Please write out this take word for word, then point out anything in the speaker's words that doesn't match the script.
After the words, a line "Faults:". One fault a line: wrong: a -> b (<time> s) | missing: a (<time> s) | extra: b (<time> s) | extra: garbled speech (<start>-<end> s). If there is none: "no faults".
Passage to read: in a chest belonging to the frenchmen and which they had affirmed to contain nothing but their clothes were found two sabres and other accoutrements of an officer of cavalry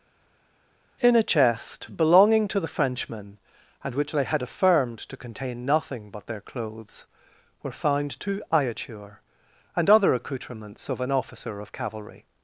in a chest belonging to the frenchmen and which they had affirmed to contain nothing but their clothes were found two iature and other accoutrements of an officer of cavalry
Faults:
wrong: sabres -> iature (8.5 s)